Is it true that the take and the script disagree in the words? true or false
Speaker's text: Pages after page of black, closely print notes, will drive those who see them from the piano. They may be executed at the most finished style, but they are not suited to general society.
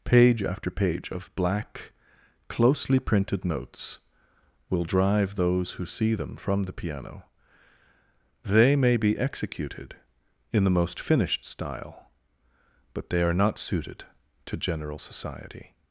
true